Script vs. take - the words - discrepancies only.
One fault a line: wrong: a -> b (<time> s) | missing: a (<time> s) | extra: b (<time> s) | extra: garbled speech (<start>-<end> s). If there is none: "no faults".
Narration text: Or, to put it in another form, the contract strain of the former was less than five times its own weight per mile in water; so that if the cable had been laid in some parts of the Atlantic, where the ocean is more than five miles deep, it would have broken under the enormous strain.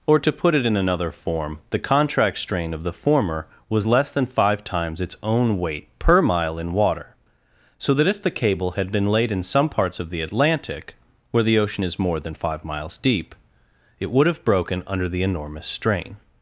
no faults